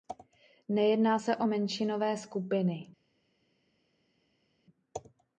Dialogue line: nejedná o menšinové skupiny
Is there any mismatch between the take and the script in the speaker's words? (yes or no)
yes